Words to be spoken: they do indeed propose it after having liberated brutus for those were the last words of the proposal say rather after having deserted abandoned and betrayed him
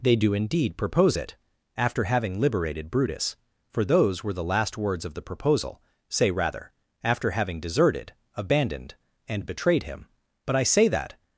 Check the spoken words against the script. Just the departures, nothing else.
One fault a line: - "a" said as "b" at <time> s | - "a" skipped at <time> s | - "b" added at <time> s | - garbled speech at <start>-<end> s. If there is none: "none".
- "but i say that" added at 10.4 s